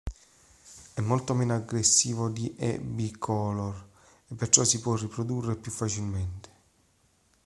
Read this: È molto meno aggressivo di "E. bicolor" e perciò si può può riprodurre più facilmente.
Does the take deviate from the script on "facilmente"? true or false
false